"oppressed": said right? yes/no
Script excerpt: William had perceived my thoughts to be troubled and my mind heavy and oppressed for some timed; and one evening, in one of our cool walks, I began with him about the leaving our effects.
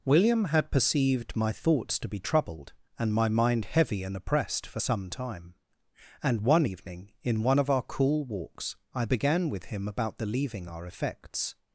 yes